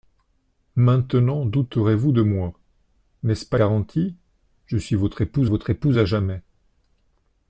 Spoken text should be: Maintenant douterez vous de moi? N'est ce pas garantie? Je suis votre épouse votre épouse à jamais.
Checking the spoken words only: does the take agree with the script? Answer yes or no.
yes